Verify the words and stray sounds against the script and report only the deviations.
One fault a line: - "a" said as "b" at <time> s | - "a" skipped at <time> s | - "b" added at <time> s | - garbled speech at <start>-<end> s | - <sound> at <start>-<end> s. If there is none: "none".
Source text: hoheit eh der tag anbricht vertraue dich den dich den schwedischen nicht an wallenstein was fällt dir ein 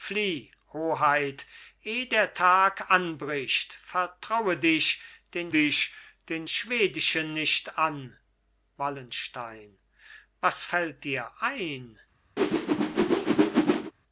- whoosh at 12.4-13.9 s